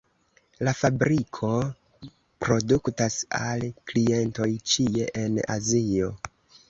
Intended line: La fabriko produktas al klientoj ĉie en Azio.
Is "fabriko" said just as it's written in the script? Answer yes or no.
yes